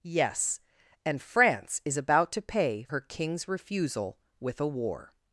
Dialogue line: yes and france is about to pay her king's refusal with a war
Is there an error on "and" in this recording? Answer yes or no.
no